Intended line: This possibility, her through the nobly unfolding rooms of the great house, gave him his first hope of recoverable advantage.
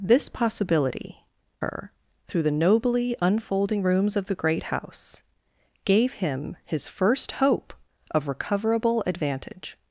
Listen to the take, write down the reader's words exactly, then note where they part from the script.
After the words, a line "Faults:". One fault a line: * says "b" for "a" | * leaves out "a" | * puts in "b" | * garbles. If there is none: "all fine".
This possibility, her through the nobly unfolding rooms of the great house, gave him his first hope of recoverable advantage.
Faults:
all fine